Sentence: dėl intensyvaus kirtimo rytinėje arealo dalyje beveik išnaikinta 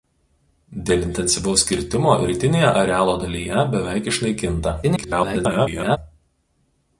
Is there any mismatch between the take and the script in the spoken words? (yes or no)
yes